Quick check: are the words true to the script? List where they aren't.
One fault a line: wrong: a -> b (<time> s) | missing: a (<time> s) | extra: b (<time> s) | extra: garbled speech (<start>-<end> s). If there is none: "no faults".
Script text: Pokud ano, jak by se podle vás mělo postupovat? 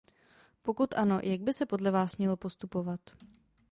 no faults